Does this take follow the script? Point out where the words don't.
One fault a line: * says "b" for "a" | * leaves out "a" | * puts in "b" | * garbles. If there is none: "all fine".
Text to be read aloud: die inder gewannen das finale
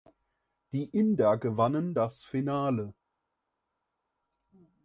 all fine